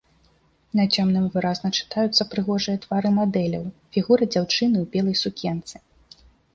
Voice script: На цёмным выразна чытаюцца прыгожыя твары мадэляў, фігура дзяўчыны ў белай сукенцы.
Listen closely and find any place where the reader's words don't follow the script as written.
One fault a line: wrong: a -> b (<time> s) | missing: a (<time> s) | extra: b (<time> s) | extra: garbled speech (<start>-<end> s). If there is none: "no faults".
no faults